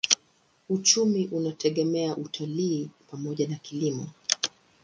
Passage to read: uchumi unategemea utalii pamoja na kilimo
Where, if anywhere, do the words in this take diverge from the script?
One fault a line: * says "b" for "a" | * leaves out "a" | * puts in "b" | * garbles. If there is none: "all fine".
all fine